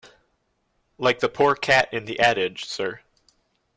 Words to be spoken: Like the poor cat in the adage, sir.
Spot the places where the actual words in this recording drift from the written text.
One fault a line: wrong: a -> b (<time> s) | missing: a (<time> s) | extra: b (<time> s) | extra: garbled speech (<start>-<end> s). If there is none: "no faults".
no faults